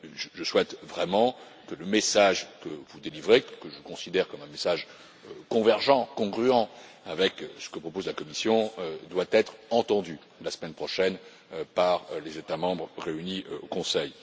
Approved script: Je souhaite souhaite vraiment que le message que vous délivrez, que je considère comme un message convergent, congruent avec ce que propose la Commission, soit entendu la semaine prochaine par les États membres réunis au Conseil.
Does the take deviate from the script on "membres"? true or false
false